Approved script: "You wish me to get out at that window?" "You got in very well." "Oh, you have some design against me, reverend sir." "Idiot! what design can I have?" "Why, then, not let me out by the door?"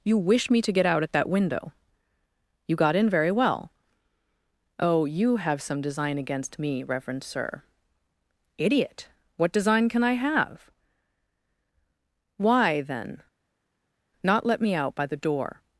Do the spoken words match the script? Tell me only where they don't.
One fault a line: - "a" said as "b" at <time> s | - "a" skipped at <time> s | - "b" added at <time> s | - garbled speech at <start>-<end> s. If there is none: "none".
none